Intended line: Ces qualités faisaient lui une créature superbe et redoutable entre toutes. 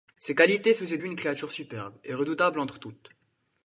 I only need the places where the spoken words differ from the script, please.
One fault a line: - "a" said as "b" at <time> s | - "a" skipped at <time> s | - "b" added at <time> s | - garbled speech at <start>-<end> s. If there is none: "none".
none